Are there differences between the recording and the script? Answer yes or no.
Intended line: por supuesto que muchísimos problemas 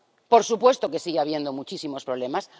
yes